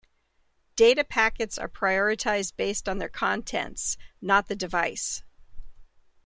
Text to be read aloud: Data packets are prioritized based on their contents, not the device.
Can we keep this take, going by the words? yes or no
yes